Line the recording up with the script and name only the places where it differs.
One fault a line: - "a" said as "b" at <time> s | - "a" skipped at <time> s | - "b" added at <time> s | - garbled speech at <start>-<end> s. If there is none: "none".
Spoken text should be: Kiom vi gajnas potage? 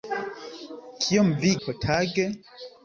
- "gajnas" skipped at 1.5 s